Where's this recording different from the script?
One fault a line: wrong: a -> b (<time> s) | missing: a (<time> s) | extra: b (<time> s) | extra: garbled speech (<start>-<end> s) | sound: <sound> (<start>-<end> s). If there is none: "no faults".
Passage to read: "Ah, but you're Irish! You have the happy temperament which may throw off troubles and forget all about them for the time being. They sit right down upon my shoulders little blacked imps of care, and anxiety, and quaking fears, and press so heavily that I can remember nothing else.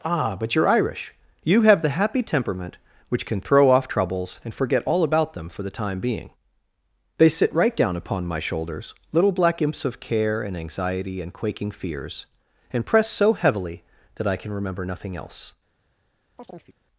wrong: may -> can (3.3 s)
wrong: blacked -> black (9.3 s)
sound: chirp (16.4-16.8 s)